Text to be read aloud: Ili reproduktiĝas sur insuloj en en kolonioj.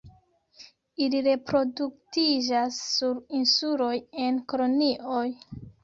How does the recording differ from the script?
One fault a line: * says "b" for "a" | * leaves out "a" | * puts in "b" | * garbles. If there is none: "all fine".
* leaves out "en"